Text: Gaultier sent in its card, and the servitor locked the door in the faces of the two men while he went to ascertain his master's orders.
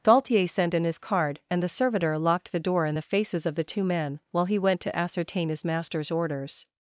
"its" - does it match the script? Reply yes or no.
no